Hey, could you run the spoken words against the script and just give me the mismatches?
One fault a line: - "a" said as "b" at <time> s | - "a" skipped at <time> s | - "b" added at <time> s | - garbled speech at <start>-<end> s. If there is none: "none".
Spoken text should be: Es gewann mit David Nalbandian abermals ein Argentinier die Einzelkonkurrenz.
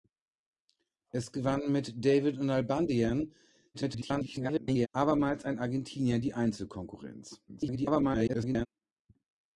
- garbled speech at 3.7-4.9 s
- garbled speech at 7.5-8.7 s